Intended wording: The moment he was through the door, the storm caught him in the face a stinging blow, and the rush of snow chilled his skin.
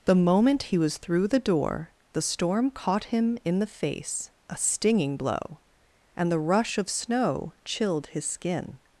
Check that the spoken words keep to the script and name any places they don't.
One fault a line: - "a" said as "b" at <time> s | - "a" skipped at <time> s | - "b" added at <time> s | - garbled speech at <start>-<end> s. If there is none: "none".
none